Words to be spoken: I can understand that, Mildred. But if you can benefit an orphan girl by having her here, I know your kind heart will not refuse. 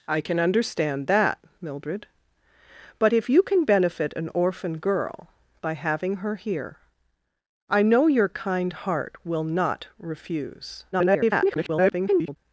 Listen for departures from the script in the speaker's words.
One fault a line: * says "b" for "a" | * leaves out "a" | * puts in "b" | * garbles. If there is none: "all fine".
* garbles